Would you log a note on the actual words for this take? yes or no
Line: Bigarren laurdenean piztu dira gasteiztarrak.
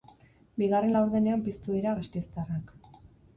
no